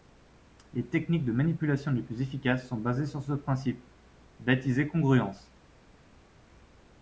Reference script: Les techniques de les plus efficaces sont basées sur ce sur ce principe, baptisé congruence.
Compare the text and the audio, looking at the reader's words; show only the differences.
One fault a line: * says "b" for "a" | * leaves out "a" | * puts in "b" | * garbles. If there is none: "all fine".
* puts in "manipulation"
* leaves out "sur ce"